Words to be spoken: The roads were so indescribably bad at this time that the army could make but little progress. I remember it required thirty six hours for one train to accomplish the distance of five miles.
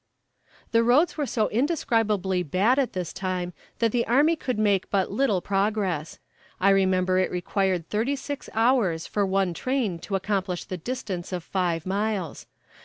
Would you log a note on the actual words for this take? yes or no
no